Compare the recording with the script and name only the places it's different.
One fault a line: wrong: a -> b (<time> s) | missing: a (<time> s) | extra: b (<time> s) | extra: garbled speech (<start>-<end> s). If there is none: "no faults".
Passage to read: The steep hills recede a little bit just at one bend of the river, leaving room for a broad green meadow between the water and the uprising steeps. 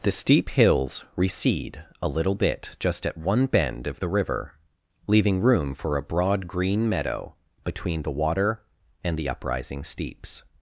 no faults